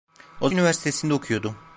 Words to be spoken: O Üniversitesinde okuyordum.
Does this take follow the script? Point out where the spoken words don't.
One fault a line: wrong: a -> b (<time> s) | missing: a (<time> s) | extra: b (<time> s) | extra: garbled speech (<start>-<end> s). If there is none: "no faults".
no faults